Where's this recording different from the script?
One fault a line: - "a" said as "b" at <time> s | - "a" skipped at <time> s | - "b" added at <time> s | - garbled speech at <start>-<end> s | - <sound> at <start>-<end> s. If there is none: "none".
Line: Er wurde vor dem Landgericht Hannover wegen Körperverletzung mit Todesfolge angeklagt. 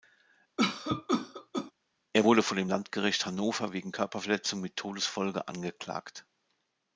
- cough at 0.6-1.7 s